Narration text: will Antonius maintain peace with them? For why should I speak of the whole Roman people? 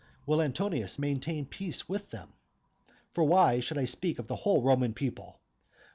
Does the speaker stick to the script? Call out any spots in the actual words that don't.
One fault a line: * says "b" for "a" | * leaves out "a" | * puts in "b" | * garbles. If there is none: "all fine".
all fine